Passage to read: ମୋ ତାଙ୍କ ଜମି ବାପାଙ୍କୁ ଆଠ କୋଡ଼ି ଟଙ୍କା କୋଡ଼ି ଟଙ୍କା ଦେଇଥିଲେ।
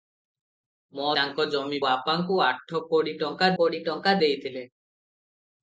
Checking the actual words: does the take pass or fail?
pass